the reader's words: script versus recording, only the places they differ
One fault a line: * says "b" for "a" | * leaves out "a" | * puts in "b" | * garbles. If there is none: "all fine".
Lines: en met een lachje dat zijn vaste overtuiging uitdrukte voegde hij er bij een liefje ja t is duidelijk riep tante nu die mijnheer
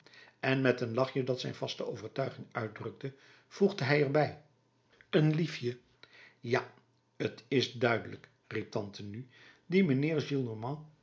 all fine